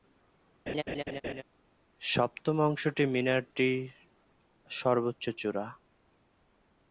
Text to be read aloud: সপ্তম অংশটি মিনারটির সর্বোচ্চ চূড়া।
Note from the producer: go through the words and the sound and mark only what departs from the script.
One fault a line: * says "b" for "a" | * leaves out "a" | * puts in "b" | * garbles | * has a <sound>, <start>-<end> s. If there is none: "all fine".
* has a laugh, 0.7-1.4 s